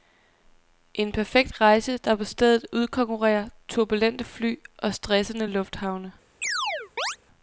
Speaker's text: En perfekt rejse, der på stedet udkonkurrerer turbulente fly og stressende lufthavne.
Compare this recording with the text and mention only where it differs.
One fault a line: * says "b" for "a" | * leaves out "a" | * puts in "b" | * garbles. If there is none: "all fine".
all fine